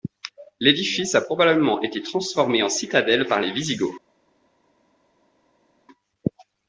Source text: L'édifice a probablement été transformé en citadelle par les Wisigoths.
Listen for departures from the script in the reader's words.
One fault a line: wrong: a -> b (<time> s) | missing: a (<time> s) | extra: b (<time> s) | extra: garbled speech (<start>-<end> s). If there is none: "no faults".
no faults